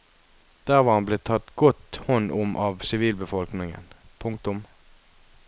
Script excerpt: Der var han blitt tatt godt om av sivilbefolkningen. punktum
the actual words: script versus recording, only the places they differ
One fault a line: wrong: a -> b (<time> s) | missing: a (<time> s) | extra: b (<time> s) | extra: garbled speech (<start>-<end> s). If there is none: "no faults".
extra: hånd (2.1 s)